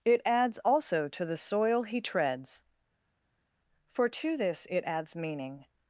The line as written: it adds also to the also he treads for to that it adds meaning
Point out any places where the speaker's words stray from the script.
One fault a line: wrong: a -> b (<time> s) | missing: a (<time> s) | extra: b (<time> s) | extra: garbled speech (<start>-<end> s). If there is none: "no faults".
wrong: also -> soil (1.4 s)
wrong: that -> this (4.4 s)